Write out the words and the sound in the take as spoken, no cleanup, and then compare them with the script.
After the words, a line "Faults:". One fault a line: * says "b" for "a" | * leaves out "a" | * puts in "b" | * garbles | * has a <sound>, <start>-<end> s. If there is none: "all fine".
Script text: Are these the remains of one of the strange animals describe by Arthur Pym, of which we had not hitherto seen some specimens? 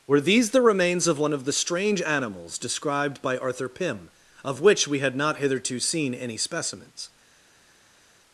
Were these the remains of one of the strange animals described by Arthur Pym, of which we had not hitherto seen any specimens?
Faults:
* says "Were" for "Are"
* says "described" for "describe"
* says "any" for "some"